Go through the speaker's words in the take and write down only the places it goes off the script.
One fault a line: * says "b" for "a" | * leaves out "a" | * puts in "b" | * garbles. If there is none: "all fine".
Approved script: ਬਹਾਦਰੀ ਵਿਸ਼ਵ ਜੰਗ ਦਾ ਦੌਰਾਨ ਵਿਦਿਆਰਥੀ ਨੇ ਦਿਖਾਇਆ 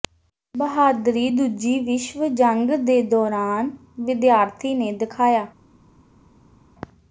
* puts in "ਦੂਜੀ"
* says "ਦੇ" for "ਦਾ"